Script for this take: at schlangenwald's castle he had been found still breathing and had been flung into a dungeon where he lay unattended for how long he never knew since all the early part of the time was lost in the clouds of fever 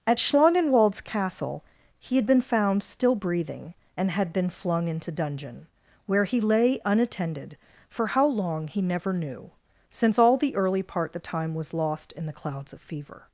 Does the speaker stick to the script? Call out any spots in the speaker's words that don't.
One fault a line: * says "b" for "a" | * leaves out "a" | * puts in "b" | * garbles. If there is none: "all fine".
* leaves out "a"
* leaves out "of"